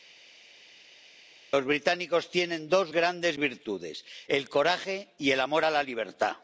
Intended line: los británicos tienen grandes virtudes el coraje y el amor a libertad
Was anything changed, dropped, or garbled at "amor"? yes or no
no